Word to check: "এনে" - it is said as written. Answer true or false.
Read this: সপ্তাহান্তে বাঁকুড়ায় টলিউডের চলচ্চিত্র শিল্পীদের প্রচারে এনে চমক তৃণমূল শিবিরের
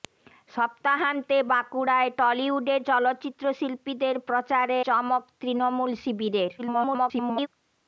false